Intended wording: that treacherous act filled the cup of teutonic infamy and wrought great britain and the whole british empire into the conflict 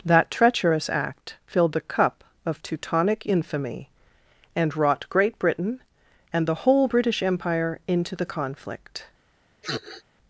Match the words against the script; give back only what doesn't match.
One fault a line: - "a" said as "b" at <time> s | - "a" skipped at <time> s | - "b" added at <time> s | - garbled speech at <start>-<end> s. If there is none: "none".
none